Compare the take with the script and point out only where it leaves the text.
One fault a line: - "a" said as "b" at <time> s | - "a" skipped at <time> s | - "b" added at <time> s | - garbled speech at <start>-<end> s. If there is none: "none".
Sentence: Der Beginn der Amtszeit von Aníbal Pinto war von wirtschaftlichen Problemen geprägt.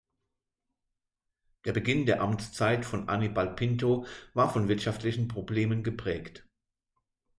none